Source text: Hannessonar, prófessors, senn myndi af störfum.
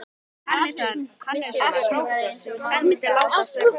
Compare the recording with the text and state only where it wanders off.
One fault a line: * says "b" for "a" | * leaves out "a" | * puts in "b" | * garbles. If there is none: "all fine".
* puts in "sem"
* puts in "láta"